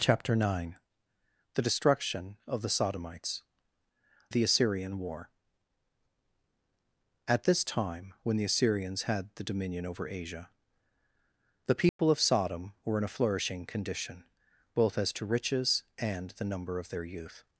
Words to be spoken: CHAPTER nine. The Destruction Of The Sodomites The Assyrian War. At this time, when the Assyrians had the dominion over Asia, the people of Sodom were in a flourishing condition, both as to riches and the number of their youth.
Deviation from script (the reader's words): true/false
false